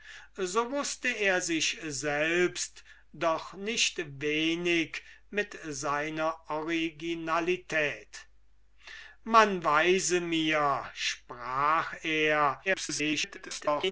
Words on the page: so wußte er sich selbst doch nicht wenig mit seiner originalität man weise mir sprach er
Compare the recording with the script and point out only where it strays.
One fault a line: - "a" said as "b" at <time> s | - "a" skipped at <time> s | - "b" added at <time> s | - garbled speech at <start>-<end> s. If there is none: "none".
- garbled speech at 12.6-13.9 s